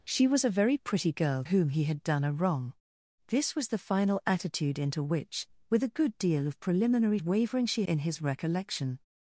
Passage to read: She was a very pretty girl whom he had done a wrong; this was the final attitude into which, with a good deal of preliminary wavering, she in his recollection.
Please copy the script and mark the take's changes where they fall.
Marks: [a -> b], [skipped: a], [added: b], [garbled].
She was a very pretty girl whom he had done a wrong; this was the final attitude into which, with a good deal of preliminary wavering, she in his recollection.